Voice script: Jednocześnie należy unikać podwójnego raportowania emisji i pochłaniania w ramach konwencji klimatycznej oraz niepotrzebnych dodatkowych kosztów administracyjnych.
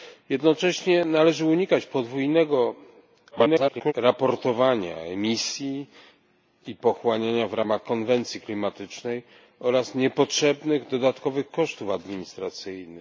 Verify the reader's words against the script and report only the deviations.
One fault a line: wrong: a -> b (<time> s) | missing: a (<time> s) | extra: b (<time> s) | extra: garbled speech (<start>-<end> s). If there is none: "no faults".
extra: garbled speech (3.3-3.9 s)